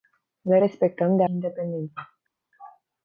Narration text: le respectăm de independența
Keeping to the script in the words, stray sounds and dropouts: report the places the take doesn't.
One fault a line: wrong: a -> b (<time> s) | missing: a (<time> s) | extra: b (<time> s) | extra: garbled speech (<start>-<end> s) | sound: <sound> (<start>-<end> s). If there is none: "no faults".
no faults